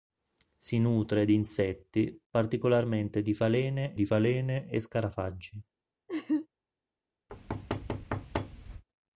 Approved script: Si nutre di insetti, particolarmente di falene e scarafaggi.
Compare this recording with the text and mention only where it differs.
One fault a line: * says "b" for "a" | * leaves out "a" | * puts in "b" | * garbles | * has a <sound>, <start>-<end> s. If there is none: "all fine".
* puts in "di falene"
* has a laugh, 6.1-6.5 s
* has a thud, 7.3-8.8 s